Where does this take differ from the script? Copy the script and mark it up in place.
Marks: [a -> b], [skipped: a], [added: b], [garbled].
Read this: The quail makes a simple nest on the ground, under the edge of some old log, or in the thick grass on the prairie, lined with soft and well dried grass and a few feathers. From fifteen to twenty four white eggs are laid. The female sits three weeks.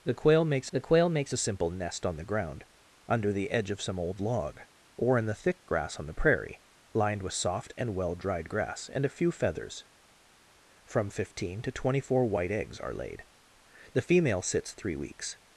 The quail makes [added: the quail makes] a simple nest on the ground, under the edge of some old log, or in the thick grass on the prairie, lined with soft and well dried grass and a few feathers. From fifteen to twenty four white eggs are laid. The female sits three weeks.